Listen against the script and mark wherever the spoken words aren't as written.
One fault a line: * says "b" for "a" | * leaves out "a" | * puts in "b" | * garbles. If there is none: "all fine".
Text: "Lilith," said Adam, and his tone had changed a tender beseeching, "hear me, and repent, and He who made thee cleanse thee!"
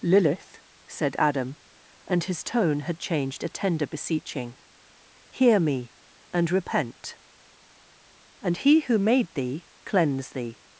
all fine